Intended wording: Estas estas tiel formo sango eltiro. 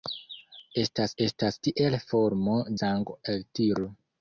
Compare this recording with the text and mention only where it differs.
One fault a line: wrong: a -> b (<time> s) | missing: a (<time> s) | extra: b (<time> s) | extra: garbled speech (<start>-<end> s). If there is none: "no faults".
no faults